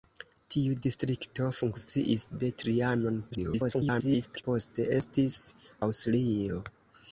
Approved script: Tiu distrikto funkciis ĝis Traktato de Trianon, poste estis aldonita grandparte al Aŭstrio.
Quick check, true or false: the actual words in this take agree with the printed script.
false